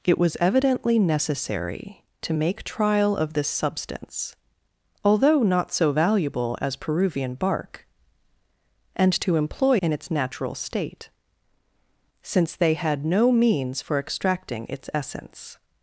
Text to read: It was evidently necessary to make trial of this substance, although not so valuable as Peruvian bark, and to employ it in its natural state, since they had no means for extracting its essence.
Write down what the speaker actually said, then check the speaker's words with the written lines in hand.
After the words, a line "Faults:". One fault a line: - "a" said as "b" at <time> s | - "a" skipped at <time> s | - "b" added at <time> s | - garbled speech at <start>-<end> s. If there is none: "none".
It was evidently necessary to make trial of this substance, although not so valuable as Peruvian bark, and to employ in its natural state, since they had no means for extracting its essence.
Faults:
- "it" skipped at 9.8 s